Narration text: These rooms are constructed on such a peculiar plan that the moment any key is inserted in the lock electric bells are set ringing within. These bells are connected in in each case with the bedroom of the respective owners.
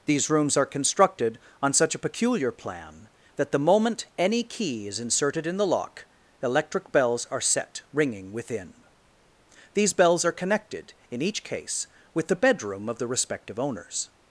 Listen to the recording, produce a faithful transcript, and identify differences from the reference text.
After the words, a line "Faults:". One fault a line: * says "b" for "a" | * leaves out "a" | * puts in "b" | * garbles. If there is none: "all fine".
These rooms are constructed on such a peculiar plan that the moment any key is inserted in the lock electric bells are set ringing within. These bells are connected in each case with the bedroom of the respective owners.
Faults:
* leaves out "in"